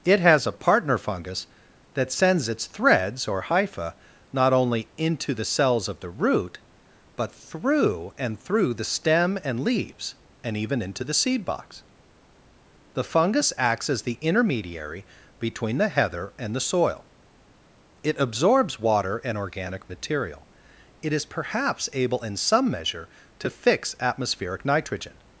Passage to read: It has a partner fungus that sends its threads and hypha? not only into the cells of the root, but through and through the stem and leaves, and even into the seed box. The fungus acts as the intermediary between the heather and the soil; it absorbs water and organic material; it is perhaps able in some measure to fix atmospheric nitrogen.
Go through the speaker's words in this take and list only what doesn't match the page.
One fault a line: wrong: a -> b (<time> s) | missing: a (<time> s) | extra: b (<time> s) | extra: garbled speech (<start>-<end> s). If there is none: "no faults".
wrong: and -> or (3.3 s)